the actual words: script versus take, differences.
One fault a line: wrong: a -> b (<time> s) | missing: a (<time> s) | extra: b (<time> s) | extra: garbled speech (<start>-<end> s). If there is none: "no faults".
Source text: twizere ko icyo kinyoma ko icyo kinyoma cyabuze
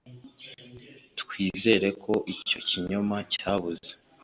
missing: ko icyo kinyoma (3.2 s)